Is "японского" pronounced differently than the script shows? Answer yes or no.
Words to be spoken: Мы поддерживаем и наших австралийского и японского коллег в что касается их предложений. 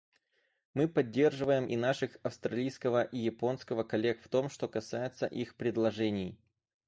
no